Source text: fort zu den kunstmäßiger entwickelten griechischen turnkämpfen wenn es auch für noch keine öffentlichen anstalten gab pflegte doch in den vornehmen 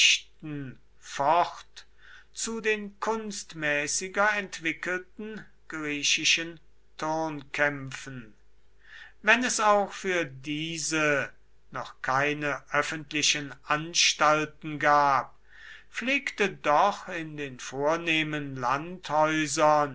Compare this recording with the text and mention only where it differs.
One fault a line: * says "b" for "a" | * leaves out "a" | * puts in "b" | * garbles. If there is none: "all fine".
* puts in "diese"